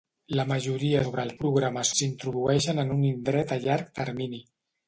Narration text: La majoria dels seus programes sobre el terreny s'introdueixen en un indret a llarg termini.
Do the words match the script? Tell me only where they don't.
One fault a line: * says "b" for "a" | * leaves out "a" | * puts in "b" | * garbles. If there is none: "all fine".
* leaves out "dels seus programes"
* says "programes" for "terreny"